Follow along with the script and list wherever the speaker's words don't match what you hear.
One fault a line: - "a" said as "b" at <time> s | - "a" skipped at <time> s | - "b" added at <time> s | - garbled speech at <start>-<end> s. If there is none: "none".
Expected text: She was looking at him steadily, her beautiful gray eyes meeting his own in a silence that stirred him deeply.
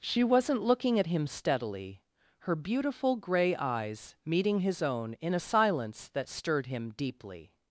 - "was" said as "wasn't" at 0.2 s